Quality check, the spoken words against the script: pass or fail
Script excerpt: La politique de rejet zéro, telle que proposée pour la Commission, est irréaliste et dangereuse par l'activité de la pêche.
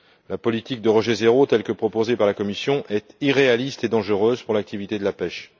fail